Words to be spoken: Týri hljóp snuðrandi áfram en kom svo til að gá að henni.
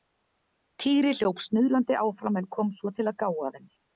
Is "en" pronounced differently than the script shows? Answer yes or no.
no